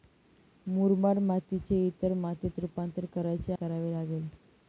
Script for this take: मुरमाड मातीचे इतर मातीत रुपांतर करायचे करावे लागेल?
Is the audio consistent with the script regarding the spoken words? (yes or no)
yes